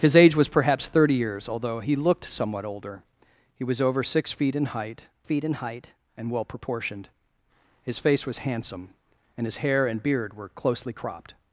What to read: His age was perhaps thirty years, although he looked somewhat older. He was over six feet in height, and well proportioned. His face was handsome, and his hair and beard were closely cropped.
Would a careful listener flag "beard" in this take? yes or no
no